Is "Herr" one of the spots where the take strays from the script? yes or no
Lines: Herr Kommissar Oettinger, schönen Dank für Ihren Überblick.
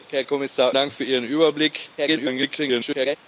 no